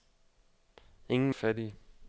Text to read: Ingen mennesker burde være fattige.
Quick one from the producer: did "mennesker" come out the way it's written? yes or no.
no